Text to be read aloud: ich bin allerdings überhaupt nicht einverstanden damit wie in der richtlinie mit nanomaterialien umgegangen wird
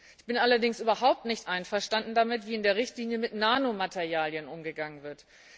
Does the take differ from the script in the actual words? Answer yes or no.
no